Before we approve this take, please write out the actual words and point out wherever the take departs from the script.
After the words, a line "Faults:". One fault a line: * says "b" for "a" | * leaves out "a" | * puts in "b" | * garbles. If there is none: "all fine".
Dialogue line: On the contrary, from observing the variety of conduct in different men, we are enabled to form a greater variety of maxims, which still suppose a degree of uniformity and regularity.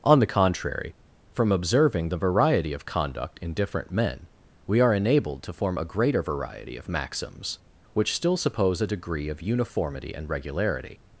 On the contrary, from observing the variety of conduct in different men, we are enabled to form a greater variety of maxims, which still suppose a degree of uniformity and regularity.
Faults:
all fine